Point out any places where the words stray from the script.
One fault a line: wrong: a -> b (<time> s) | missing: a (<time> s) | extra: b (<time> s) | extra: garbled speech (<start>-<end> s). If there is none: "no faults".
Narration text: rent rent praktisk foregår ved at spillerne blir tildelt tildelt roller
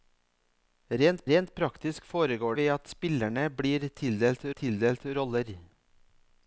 no faults